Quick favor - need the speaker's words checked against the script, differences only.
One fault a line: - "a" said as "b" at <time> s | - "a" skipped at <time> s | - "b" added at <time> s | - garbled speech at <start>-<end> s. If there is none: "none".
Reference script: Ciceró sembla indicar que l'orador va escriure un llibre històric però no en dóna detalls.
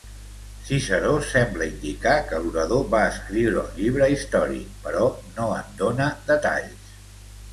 none